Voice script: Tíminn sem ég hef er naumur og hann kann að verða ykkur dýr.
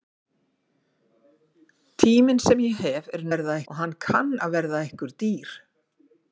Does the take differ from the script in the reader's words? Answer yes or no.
yes